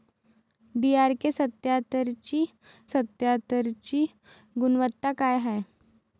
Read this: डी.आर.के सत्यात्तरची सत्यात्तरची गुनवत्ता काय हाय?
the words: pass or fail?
pass